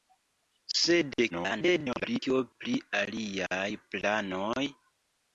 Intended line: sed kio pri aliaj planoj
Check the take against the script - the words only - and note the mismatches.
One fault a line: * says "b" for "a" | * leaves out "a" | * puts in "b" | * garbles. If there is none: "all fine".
* garbles